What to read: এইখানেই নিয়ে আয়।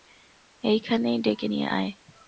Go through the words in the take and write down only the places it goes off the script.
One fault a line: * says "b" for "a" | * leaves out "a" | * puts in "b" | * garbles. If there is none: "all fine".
* puts in "ডেকে"